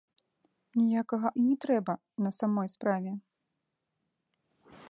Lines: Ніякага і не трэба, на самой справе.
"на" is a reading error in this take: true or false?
false